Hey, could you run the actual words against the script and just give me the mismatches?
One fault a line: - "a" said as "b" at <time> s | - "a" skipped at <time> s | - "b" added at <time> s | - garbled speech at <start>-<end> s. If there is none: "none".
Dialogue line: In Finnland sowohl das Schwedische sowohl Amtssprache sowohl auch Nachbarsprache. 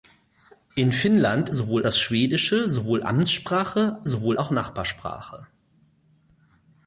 none